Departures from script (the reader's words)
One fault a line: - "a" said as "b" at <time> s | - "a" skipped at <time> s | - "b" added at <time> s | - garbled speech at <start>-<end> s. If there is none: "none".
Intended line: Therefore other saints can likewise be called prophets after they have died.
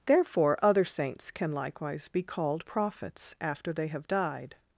none